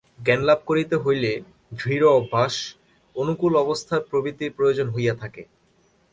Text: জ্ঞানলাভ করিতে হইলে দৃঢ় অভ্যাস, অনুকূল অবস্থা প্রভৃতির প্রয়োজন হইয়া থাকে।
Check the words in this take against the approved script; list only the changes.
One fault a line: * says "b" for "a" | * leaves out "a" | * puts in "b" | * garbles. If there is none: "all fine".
all fine